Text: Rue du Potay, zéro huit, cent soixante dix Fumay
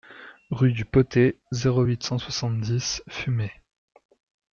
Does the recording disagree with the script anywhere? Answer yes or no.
no